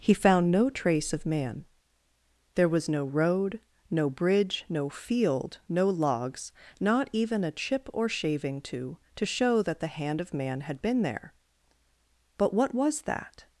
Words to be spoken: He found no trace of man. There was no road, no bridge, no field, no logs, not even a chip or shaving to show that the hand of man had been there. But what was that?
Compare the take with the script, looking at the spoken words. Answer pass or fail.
fail